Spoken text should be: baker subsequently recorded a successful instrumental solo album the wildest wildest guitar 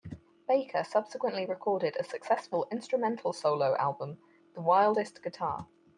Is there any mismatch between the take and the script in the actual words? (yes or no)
yes